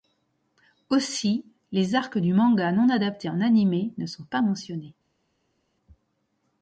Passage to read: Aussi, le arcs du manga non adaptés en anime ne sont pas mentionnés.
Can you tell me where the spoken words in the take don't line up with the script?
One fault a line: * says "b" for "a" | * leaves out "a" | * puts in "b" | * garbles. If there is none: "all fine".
* says "les" for "le"